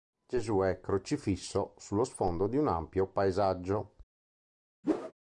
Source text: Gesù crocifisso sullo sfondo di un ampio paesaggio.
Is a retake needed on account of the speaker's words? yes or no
yes